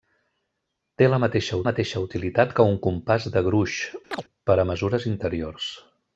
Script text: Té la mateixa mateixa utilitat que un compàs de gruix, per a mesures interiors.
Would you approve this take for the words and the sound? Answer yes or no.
no